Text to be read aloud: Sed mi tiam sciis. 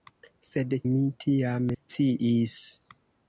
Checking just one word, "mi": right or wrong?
right